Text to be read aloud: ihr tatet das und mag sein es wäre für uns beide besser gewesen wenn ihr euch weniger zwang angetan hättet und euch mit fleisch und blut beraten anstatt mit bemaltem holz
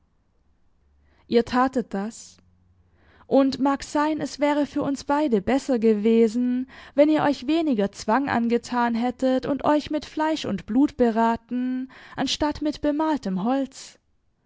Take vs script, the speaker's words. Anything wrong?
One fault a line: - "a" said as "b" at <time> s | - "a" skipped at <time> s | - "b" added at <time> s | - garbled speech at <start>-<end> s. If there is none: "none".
none